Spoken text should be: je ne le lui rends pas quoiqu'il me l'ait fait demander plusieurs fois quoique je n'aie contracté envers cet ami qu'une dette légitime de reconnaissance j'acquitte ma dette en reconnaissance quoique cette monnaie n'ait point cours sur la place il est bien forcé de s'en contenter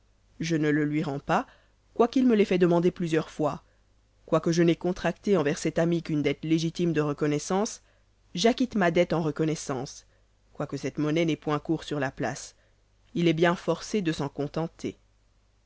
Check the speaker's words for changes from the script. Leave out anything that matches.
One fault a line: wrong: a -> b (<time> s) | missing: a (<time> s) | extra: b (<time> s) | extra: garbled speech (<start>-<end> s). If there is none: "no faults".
no faults